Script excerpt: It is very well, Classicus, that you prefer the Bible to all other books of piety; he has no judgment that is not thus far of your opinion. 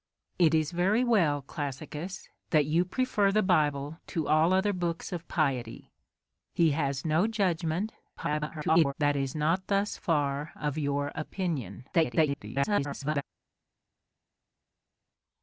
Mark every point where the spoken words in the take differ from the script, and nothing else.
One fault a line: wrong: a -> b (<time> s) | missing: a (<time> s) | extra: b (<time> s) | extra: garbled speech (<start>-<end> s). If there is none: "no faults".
extra: garbled speech (8.2-8.9 s)
extra: garbled speech (11.9-13.2 s)